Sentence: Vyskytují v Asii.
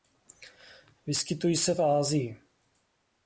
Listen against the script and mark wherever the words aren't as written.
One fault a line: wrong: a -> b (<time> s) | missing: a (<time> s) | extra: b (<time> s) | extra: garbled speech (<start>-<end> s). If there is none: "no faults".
extra: se (1.6 s)